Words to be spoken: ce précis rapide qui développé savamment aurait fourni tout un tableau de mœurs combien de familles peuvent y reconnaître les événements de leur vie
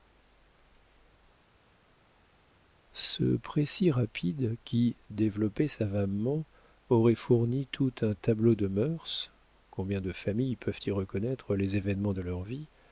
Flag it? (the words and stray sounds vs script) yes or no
no